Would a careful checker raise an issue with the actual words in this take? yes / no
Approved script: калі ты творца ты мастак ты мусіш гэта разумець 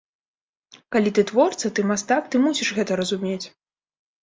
no